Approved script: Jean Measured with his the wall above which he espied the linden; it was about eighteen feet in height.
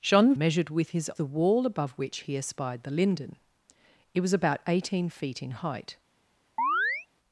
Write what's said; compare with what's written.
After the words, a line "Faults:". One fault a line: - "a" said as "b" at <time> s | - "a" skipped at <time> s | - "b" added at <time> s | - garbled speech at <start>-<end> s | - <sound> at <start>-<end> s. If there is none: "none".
Jean Measured with his the wall above which he espied the linden; it was about eighteen feet in height.
Faults:
- chirp at 6.6-7.1 s